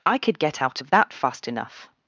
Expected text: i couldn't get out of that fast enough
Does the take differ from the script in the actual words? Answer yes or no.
yes